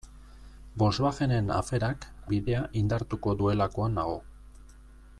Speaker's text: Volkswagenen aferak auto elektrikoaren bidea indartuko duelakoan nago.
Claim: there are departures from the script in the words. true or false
true